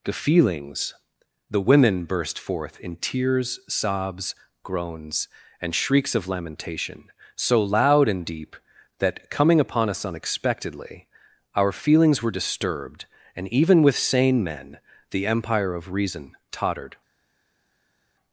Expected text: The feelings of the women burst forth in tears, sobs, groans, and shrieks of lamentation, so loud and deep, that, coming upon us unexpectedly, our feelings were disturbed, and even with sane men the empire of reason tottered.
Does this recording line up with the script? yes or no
no